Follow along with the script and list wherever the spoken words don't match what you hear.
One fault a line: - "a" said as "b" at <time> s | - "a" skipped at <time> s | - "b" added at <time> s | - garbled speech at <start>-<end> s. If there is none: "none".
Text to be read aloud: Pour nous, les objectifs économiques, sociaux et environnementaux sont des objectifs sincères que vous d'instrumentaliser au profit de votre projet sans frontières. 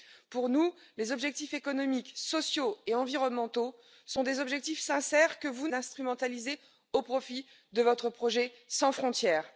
none